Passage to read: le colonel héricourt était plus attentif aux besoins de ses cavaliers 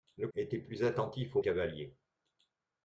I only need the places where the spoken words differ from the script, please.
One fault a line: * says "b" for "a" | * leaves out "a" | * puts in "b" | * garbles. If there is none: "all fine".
* leaves out "colonel héricourt"
* leaves out "besoins de ses"